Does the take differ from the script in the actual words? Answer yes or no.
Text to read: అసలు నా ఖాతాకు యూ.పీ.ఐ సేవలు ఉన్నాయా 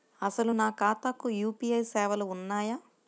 no